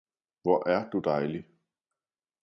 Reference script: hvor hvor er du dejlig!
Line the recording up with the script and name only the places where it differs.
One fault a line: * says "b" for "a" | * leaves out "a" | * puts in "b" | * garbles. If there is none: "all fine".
* leaves out "hvor"